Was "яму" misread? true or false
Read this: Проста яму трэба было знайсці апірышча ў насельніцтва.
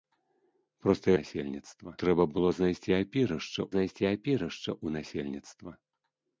true